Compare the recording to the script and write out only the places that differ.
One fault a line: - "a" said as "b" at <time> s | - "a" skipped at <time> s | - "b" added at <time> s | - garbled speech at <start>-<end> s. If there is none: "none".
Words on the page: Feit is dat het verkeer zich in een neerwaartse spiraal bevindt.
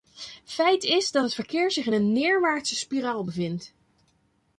none